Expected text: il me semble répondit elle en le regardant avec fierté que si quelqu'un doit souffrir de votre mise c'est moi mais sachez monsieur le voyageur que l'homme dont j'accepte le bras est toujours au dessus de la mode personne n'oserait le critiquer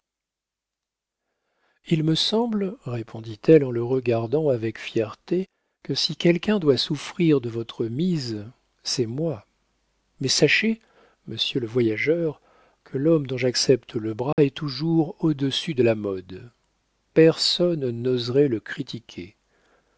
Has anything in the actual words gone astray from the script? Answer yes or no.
no